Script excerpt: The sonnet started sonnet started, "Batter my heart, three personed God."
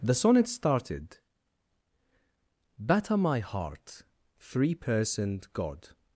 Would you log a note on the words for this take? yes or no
yes